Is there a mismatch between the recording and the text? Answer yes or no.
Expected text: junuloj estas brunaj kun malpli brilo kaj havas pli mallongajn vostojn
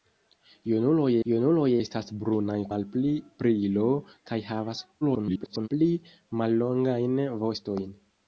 yes